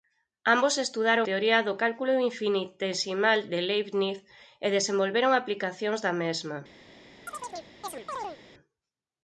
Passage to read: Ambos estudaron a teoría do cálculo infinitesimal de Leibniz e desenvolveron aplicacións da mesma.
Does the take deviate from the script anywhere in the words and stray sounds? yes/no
yes